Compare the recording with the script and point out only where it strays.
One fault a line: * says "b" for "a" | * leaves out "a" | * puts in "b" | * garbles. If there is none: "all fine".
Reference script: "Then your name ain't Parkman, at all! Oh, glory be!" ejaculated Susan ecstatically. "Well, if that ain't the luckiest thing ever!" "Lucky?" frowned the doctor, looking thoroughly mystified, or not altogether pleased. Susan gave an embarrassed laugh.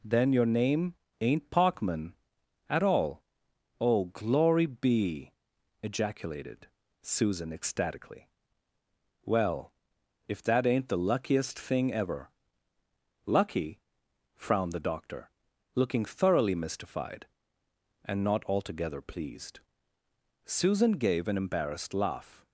* says "and" for "or"